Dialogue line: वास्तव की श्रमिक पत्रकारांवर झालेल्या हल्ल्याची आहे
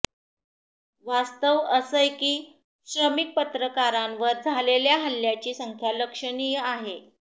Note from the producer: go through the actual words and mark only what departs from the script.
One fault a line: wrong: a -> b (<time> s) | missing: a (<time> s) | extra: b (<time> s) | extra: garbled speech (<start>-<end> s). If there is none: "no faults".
extra: असंय (1.7 s)
extra: संख्या लक्षणीय (5.5 s)